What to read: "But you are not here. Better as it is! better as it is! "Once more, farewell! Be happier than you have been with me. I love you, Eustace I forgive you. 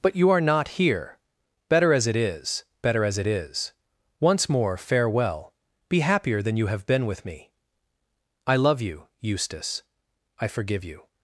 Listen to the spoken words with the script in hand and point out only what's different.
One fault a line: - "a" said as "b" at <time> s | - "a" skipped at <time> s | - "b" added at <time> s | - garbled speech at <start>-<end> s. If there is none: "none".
none